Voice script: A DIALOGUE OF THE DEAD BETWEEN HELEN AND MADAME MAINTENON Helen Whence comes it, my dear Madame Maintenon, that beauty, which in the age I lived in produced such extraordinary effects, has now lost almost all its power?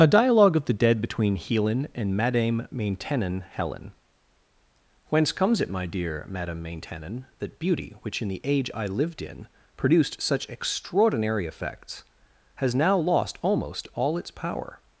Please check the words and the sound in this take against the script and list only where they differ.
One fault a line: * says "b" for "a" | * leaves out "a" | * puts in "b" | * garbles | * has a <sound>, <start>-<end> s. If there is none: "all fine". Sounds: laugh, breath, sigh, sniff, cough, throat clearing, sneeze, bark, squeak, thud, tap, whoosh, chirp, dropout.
all fine